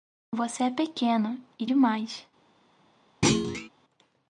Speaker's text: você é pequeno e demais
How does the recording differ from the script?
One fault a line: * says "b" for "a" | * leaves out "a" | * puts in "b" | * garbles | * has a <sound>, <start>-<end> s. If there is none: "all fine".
* has a thud, 3.2-3.7 s